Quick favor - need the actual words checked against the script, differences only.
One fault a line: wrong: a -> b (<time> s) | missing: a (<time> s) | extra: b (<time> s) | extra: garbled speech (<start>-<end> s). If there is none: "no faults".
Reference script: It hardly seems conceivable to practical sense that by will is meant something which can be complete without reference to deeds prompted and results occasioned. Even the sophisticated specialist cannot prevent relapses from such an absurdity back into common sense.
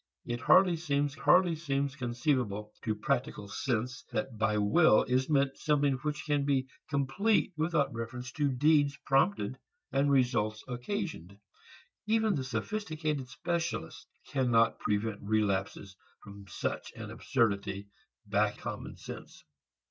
extra: hardly seems (1.2 s)
missing: into (18.6 s)